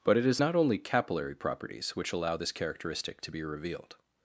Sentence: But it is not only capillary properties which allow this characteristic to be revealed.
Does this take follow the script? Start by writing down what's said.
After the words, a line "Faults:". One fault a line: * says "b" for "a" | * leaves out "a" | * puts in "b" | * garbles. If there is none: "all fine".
But it is not only capillary properties which allow this characteristic to be revealed.
Faults:
all fine